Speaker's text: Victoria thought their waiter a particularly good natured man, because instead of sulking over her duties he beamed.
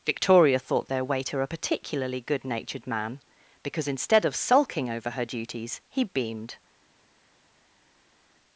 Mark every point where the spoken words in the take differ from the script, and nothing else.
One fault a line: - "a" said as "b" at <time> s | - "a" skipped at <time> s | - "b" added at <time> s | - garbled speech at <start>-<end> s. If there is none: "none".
none